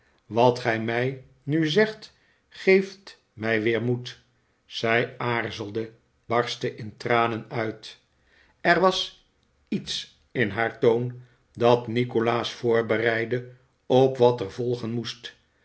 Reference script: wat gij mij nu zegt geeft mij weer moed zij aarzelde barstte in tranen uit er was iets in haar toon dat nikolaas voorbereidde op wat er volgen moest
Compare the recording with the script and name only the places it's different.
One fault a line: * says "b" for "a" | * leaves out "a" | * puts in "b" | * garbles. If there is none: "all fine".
all fine